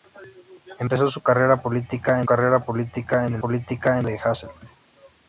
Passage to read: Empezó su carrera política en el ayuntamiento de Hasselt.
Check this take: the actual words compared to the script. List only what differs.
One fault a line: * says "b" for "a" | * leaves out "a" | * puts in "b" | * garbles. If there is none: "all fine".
* puts in "carrera política"
* says "política" for "ayuntamiento"